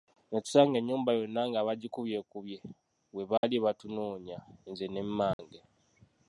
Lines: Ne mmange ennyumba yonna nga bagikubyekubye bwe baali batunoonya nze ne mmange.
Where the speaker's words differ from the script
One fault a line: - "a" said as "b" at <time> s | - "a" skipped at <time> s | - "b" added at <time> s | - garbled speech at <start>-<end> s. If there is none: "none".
- "mmange" said as "tusanga" at 0.4 s